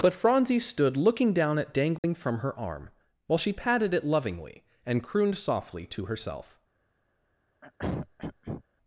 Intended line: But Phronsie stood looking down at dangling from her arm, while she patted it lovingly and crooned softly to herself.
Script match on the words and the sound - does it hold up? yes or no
no